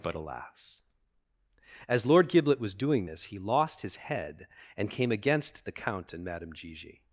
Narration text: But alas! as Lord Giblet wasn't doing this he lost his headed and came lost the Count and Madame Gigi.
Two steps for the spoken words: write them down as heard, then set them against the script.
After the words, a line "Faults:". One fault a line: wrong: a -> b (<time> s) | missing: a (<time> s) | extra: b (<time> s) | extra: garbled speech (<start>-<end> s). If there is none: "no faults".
But alas! as Lord Giblet was doing this he lost his head and came against the Count and Madame Gigi.
Faults:
wrong: wasn't -> was (2.6 s)
wrong: headed -> head (4.0 s)
wrong: lost -> against (5.1 s)